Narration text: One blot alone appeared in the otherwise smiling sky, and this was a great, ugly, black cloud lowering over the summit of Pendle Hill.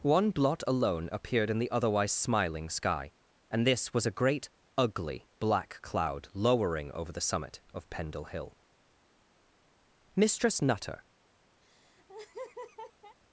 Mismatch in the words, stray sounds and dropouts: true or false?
true